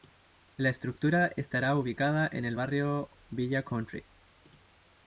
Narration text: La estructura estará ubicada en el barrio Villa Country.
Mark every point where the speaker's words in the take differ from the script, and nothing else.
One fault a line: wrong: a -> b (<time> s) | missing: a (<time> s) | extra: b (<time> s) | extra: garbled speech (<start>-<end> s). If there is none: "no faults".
no faults